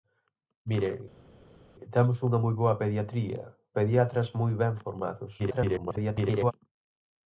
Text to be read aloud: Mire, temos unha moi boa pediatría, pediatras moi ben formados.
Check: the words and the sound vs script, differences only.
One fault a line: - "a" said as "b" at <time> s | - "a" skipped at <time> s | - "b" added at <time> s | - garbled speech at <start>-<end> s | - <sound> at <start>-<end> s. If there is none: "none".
- garbled speech at 5.4-6.5 s